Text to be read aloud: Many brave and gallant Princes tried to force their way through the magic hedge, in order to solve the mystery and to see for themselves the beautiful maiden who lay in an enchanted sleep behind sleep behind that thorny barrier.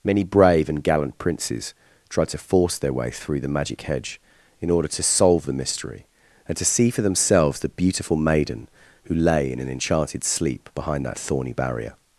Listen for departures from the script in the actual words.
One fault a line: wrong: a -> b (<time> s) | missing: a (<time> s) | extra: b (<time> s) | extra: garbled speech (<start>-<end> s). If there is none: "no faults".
missing: sleep behind (11.1 s)